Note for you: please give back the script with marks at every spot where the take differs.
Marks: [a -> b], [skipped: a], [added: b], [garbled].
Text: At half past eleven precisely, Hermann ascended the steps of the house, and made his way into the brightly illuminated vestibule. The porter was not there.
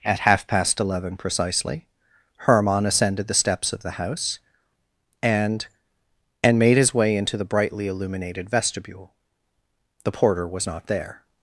At half past eleven precisely, Hermann ascended the steps of the house, and [added: and] made his way into the brightly illuminated vestibule. The porter was not there.